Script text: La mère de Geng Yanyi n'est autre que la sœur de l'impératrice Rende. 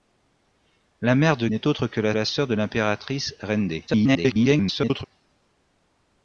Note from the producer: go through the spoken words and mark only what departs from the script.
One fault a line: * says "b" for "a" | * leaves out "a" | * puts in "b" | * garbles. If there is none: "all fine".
* leaves out "Geng Yanyi"
* puts in "la"
* garbles